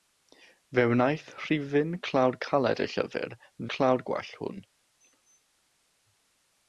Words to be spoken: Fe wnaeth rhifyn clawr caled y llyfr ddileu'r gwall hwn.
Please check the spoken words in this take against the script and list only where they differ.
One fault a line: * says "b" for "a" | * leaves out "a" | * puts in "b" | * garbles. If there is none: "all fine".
* says "clawr" for "ddileu'r"